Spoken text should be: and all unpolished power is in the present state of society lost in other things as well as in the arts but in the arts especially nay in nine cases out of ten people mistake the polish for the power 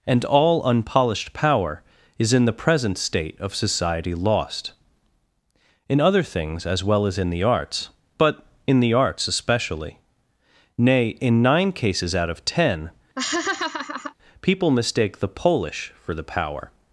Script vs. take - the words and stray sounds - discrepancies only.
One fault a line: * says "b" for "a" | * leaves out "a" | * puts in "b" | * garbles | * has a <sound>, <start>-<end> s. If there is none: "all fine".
* has a laugh, 13.2-14.1 s